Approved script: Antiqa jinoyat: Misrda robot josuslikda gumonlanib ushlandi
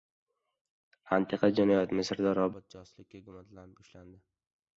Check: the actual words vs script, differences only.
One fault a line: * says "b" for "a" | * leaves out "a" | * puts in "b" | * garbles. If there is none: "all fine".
all fine